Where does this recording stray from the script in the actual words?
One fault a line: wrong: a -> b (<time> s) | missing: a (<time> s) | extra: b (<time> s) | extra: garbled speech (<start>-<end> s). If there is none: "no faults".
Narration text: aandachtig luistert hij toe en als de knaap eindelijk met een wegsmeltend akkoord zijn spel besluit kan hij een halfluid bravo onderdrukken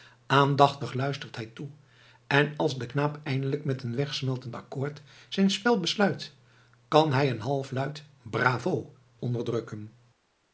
no faults